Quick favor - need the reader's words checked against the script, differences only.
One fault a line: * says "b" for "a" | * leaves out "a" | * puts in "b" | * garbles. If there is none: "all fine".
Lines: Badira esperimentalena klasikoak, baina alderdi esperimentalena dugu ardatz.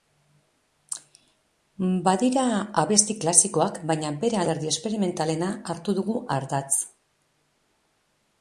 * says "abesti" for "esperimentalena"
* puts in "bere"
* puts in "hartu"